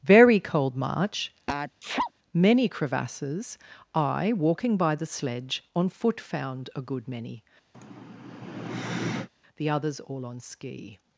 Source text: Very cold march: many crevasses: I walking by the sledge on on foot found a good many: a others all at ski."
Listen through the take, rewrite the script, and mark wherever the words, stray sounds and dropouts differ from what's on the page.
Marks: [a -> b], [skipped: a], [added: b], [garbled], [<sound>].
Very cold march: [sneeze] many crevasses: I walking by the sledge on [skipped: on] foot found a good many: [sigh] [a -> the] others all [at -> on] ski."